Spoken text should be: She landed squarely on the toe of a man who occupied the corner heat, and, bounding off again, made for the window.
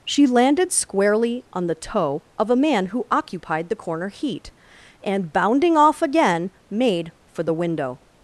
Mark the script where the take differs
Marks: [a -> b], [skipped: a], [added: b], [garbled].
She landed squarely on the toe of a man who occupied the corner heat, and, bounding off again, made for the window.